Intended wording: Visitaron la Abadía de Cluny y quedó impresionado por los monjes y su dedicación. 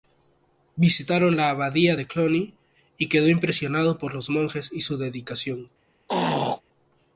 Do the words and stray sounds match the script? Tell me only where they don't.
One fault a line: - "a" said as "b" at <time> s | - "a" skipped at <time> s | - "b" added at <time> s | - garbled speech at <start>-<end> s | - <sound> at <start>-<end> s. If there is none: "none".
- throat clearing at 6.1-6.6 s